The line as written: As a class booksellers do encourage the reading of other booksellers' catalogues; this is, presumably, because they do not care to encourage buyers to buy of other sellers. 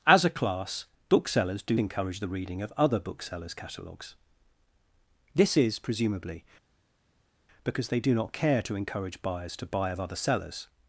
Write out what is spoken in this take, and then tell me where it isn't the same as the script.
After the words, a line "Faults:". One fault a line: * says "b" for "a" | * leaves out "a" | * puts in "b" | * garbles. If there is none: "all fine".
As a class booksellers do encourage the reading of other booksellers' catalogues; this is, presumably, because they do not care to encourage buyers to buy of other sellers.
Faults:
all fine